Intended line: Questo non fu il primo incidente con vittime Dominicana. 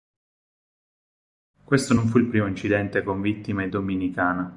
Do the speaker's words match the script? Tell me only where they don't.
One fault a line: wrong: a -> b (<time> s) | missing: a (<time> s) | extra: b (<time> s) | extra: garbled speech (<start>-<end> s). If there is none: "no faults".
no faults